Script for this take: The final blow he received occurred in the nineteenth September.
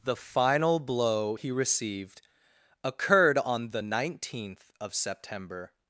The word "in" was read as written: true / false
false